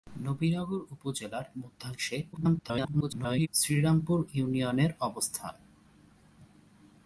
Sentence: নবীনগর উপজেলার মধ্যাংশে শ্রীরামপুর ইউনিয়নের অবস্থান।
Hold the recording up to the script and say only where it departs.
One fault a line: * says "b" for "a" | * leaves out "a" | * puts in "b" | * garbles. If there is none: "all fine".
* garbles